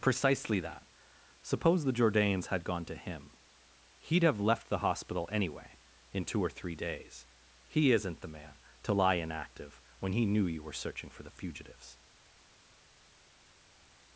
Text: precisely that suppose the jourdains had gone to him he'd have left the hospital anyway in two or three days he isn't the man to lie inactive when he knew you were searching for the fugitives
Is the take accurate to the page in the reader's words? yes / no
yes